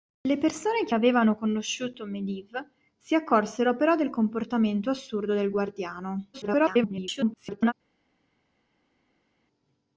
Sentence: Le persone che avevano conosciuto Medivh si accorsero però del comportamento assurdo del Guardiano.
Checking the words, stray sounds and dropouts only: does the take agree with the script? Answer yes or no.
no